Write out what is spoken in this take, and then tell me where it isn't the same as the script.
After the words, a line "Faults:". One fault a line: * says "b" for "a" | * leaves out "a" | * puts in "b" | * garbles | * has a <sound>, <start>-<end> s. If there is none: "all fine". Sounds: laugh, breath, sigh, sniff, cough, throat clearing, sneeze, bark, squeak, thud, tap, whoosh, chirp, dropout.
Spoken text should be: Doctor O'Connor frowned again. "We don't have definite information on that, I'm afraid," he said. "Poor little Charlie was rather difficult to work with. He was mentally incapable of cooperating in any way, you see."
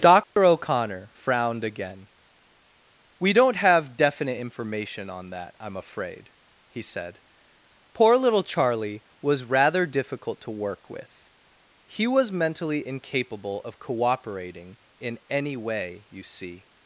Doctor O'Connor frowned again. "We don't have definite information on that, I'm afraid," he said. "Poor little Charlie was rather difficult to work with. He was mentally incapable of cooperating in any way, you see."
Faults:
* has a dropout, 0.2-0.4 s